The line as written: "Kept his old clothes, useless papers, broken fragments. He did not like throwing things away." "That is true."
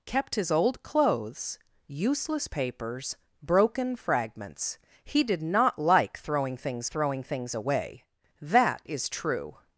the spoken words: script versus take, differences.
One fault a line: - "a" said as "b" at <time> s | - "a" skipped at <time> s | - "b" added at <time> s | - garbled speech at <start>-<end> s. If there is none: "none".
- "throwing things" added at 6.8 s